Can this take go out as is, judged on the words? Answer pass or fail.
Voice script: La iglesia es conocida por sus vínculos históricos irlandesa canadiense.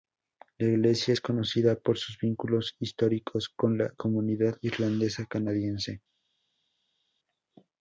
fail